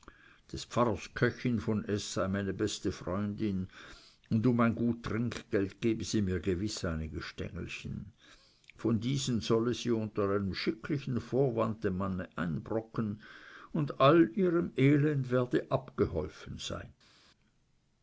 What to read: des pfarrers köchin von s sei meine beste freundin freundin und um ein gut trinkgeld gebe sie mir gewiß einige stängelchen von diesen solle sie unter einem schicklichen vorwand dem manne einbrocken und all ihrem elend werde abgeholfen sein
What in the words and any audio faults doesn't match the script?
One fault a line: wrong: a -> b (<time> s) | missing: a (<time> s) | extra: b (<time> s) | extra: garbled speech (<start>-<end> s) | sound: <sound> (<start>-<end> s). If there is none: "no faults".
missing: freundin (3.7 s)